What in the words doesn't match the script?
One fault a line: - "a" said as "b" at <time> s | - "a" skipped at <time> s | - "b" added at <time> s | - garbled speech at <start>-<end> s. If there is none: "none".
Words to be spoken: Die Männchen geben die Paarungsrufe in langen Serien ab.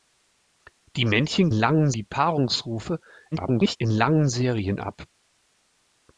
- "geben" said as "langen" at 1.5 s
- garbled speech at 3.3-3.8 s